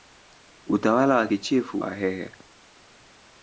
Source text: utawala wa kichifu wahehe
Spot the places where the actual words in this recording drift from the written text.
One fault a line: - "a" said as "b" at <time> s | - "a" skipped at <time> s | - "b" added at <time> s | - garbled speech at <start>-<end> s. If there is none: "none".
none